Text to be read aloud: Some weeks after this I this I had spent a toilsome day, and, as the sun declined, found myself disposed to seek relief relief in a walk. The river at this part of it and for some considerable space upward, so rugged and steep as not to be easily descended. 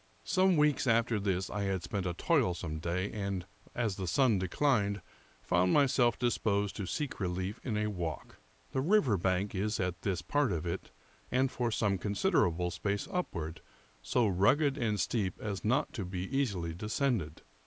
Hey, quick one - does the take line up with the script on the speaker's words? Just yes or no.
no